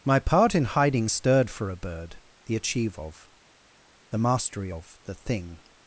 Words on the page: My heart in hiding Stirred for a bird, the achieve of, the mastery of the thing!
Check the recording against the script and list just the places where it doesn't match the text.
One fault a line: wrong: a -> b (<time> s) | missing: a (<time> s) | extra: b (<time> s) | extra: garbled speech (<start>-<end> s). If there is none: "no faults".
wrong: heart -> part (0.2 s)